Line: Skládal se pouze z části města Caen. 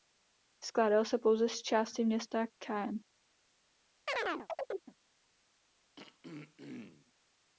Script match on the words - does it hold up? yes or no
yes